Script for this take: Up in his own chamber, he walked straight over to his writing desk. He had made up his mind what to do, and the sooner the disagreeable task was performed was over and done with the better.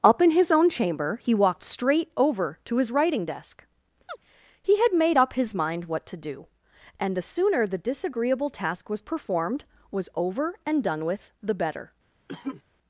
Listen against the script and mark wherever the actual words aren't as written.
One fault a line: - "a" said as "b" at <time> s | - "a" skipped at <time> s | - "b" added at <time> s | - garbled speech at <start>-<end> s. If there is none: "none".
none